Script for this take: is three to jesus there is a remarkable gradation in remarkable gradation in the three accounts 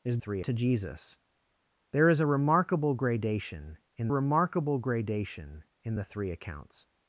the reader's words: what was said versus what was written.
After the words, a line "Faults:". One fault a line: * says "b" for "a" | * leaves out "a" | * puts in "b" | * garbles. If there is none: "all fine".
is three to jesus there is a remarkable gradation in remarkable gradation in the three accounts
Faults:
all fine